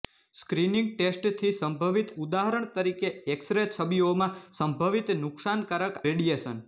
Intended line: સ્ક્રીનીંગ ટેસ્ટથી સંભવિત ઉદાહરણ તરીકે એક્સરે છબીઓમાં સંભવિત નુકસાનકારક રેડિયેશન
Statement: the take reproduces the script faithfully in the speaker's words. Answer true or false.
true